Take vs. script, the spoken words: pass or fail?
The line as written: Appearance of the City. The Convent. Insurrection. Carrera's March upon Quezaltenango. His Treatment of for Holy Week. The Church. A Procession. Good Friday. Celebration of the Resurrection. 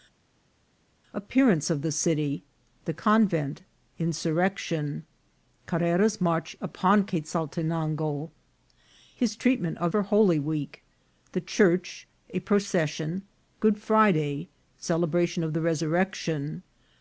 pass